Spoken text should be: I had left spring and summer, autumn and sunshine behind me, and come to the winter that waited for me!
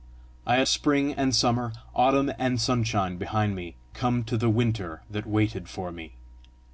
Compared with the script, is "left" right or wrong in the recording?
wrong